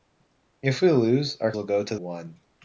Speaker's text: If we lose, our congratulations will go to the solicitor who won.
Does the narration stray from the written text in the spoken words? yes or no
yes